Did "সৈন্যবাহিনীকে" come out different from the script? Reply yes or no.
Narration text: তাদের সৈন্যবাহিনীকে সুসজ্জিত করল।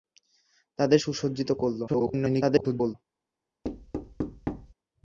yes